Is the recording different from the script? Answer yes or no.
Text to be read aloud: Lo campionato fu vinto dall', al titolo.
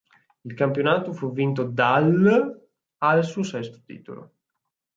yes